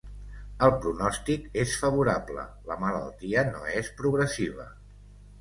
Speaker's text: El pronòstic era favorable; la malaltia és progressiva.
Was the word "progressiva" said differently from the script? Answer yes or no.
no